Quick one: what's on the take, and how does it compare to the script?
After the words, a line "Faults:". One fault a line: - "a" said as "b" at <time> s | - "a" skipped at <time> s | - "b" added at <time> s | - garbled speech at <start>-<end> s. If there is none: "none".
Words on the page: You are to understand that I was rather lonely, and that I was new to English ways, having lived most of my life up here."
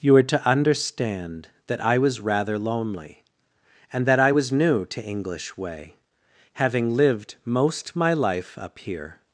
You are to understand that I was rather lonely, and that I was new to English way, having lived most my life up here."
Faults:
- "ways" said as "way" at 5.6 s
- "of" skipped at 7.9 s